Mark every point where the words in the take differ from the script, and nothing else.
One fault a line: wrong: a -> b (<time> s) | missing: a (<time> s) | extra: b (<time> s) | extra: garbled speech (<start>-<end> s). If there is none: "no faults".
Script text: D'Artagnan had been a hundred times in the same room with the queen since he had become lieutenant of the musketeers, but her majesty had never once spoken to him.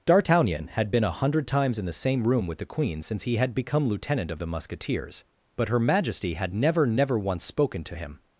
extra: never (6.9 s)